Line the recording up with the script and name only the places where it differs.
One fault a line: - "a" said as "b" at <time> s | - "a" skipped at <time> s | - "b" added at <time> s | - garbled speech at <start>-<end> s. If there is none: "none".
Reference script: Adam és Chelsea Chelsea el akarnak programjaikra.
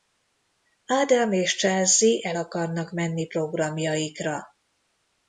- "Chelsea" skipped at 2.3 s
- "menni" added at 2.9 s